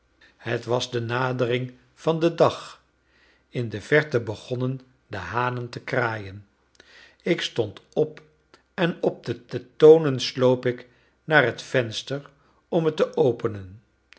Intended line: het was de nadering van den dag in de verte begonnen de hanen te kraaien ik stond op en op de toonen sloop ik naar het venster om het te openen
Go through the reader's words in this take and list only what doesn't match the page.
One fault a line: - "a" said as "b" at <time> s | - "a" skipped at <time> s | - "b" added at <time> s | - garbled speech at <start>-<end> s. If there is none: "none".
- "de" added at 9.5 s